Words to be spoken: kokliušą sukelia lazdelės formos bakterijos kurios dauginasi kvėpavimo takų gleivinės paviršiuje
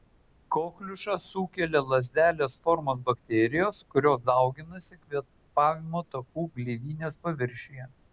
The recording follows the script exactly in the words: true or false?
true